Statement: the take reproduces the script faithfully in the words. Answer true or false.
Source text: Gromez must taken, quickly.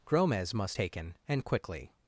false